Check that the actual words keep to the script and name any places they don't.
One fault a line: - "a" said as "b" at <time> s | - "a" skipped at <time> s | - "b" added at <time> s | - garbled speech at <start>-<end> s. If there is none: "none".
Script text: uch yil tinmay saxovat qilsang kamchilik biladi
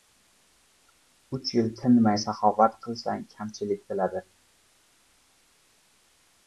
none